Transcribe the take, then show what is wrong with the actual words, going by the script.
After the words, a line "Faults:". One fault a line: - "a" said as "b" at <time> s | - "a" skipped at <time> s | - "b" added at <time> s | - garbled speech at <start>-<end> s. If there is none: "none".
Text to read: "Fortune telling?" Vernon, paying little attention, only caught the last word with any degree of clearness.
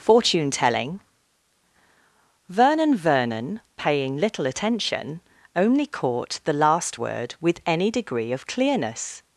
"Fortune telling?" Vernon Vernon, paying little attention, only caught the last word with any degree of clearness.
Faults:
- "Vernon" added at 3.0 s